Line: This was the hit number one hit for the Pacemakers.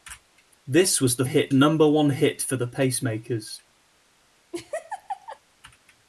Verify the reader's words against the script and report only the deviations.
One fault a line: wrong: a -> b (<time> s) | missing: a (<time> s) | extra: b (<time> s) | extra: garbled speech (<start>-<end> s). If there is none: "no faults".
no faults